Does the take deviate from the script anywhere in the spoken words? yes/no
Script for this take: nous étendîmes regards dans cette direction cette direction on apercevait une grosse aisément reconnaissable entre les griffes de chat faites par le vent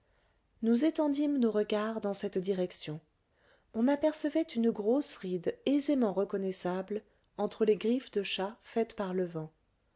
yes